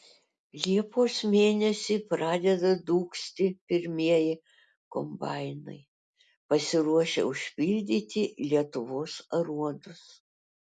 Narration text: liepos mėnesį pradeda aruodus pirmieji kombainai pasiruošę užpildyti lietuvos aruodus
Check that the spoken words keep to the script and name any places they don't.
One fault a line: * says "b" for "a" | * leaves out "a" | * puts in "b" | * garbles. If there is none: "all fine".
* says "dūgzti" for "aruodus"